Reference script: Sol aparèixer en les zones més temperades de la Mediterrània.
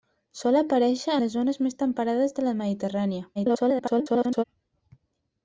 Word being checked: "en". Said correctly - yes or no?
no